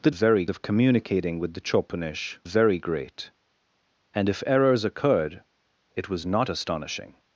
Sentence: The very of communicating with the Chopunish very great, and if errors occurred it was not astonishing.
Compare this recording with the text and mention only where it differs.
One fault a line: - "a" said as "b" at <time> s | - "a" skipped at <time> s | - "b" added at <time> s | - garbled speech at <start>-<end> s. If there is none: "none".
none